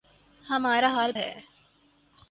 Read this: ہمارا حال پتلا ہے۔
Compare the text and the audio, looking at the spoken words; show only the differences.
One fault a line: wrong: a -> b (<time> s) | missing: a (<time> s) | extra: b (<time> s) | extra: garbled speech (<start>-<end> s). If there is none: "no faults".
missing: پتلا (1.1 s)